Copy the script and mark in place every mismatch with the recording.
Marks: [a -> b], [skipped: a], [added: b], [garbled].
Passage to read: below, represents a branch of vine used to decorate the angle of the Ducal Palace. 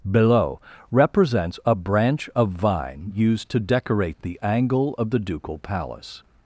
below, represents a branch of vine used to decorate the angle of the Ducal Palace.